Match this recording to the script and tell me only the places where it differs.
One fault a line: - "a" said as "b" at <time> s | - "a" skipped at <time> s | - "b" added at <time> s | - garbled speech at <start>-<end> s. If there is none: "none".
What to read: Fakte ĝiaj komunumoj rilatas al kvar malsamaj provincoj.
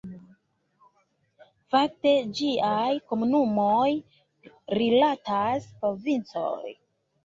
- "al kvar malsamaj" skipped at 5.7 s